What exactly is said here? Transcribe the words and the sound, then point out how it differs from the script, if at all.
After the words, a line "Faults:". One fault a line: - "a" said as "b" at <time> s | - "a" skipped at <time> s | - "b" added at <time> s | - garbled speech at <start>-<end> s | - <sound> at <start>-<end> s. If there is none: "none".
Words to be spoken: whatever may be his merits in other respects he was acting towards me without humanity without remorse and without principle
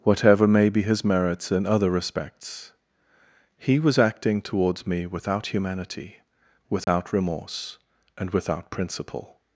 whatever may be his merits in other respects he was acting towards me without humanity without remorse and without principle
Faults:
- dropout at 6.8-6.9 s